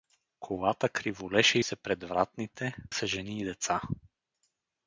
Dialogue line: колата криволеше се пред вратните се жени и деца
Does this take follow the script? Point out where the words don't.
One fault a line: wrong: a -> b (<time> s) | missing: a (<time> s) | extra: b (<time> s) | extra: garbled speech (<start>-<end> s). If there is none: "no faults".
no faults